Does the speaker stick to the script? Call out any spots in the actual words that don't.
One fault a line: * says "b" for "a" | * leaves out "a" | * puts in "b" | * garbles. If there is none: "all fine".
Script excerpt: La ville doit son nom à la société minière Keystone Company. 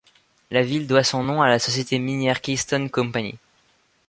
all fine